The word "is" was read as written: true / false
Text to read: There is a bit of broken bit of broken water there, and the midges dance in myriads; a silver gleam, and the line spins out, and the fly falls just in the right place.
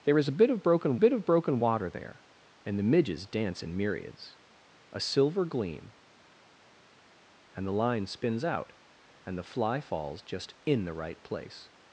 true